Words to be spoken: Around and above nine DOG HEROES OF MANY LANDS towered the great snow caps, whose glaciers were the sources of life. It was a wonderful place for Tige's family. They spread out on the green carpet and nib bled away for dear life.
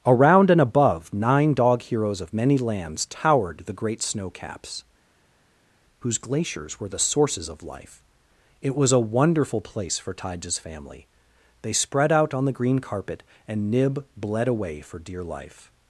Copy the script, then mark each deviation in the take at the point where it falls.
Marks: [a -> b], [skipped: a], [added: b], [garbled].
Around and above nine DOG HEROES OF MANY LANDS towered the great snow caps, whose glaciers were the sources of life. It was a wonderful place for Tige's family. They spread out on the green carpet and nib bled away for dear life.